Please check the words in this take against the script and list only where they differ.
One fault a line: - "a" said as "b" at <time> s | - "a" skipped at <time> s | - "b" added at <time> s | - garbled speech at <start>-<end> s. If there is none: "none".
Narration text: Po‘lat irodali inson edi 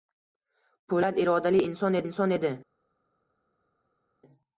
- "inson" added at 2.1 s